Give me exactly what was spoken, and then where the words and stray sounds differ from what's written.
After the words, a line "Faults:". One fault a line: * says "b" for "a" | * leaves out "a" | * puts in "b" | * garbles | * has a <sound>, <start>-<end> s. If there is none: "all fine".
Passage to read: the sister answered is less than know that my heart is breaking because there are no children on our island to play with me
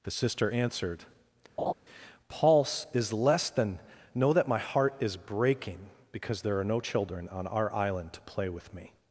the sister answered pulse is less than know that my heart is breaking because there are no children on our island to play with me
Faults:
* has a laugh, 1.6-1.7 s
* puts in "pulse"